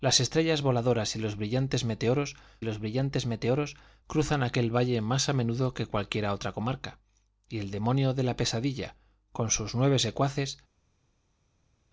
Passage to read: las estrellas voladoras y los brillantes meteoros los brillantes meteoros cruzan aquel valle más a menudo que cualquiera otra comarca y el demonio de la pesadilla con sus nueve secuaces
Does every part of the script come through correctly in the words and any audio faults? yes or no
yes